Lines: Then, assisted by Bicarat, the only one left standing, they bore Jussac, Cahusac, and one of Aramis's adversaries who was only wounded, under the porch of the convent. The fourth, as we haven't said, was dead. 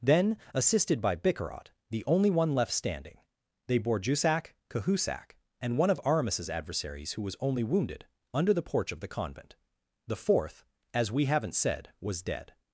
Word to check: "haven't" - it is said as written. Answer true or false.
true